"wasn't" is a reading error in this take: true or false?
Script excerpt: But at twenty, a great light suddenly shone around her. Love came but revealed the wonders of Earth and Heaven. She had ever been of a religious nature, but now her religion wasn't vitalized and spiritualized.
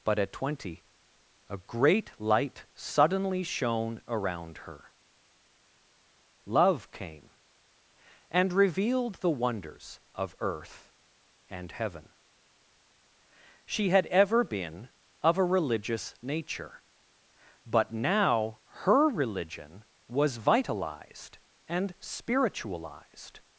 true